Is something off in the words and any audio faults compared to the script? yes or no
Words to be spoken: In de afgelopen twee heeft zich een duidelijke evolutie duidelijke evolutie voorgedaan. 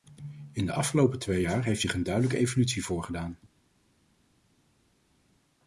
yes